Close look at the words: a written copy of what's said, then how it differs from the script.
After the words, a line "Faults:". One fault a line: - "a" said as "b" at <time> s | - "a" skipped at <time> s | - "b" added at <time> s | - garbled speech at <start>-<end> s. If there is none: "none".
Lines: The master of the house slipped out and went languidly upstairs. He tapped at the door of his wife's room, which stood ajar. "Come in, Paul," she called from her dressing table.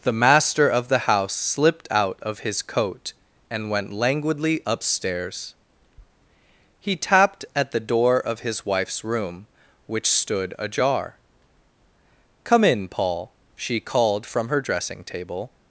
The master of the house slipped out of his coat and went languidly upstairs. He tapped at the door of his wife's room, which stood ajar. "Come in, Paul," she called from her dressing table.
Faults:
- "of his coat" added at 2.2 s